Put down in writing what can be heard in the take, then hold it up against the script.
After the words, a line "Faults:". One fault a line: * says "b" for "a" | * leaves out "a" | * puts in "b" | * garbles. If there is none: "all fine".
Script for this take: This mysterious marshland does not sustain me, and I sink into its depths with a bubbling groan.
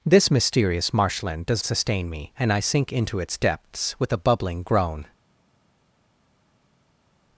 This mysterious marshland does sustain me, and I sink into its depths with a bubbling groan.
Faults:
* leaves out "not"